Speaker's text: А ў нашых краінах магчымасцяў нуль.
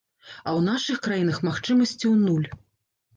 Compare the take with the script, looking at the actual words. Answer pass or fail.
pass